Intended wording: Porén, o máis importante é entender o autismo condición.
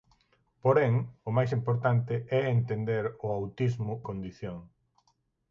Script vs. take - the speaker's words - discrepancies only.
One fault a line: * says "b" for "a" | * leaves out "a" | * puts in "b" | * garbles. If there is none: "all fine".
all fine